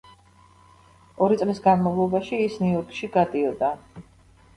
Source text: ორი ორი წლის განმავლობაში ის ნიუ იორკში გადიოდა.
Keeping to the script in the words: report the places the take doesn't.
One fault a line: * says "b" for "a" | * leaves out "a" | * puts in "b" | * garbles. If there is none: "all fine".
* leaves out "ორი"